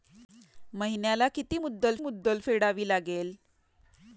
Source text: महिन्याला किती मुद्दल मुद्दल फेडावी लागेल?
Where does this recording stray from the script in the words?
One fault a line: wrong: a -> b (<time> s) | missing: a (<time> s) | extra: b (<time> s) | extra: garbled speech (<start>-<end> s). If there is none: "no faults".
no faults